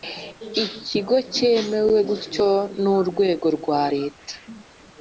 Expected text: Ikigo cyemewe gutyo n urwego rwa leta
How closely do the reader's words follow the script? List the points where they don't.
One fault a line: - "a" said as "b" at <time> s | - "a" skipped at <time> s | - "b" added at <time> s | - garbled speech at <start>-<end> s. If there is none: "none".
none